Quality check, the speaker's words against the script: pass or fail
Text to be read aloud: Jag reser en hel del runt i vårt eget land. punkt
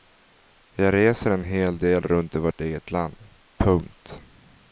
pass